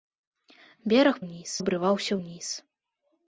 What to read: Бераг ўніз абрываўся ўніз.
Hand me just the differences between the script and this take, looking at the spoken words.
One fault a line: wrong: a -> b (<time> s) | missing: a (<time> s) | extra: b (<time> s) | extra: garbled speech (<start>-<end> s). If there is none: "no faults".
no faults